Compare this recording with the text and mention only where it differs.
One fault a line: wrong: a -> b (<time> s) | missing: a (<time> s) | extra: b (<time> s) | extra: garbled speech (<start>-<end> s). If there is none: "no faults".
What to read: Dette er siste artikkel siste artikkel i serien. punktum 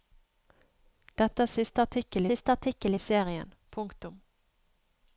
no faults